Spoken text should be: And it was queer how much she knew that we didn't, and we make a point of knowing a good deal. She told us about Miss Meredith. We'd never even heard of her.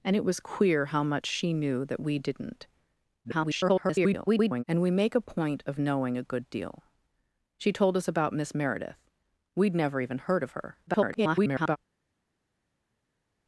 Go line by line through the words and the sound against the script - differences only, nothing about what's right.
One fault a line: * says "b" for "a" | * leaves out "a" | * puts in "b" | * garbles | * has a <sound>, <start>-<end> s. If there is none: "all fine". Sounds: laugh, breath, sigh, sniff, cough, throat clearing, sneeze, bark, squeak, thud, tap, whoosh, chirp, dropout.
* garbles
* garbles